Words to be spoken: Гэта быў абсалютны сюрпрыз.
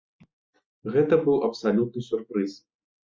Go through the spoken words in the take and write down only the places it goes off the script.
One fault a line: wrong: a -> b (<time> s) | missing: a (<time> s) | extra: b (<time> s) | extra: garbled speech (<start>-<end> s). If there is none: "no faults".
no faults